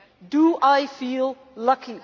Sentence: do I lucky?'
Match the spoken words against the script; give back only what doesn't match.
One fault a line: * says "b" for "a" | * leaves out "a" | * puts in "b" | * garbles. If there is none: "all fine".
* puts in "feel"